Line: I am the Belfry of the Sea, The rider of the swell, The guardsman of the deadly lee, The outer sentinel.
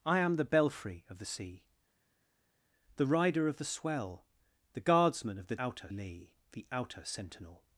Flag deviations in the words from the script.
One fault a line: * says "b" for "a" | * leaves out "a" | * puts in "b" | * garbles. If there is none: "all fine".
* says "outer" for "deadly"